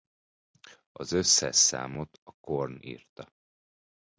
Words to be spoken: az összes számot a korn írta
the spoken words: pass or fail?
pass